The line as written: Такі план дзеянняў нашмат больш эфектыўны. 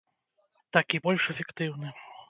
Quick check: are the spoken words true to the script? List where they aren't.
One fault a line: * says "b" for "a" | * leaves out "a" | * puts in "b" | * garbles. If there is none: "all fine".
* leaves out "план дзеянняў нашмат"